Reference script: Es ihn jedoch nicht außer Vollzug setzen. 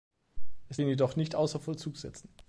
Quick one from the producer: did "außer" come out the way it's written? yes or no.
yes